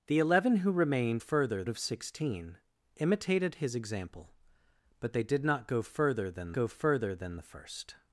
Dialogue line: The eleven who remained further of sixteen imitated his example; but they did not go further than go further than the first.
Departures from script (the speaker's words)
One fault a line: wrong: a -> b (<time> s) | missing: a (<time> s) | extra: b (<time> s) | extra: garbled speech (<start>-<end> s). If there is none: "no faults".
no faults